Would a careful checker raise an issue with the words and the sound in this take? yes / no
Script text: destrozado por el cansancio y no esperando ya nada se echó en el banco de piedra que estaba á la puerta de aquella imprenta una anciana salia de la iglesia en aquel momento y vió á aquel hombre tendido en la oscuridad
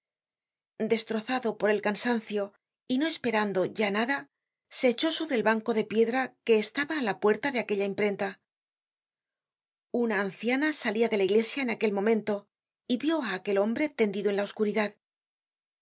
yes